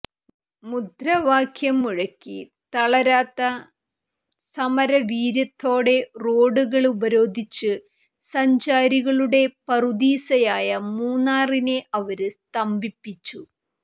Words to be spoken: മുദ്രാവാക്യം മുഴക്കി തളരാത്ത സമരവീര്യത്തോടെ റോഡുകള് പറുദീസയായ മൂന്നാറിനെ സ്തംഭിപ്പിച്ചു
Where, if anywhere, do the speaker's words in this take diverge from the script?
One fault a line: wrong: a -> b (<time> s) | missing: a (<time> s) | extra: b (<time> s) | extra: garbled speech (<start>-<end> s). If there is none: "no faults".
extra: ഉപരോധിച്ച് സഞ്ചാരികളുടെ (6.9 s)
extra: അവര് (12.0 s)